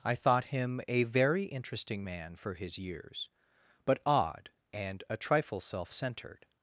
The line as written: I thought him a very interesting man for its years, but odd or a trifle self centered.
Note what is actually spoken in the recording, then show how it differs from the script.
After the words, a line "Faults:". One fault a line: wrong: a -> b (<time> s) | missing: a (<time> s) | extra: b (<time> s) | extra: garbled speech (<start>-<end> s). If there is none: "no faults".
I thought him a very interesting man for his years, but odd and a trifle self centered.
Faults:
wrong: its -> his (2.5 s)
wrong: or -> and (4.7 s)